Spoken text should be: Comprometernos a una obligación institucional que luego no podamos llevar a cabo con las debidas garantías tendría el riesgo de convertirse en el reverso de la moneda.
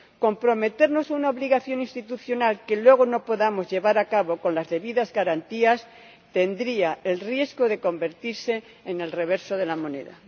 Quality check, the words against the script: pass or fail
pass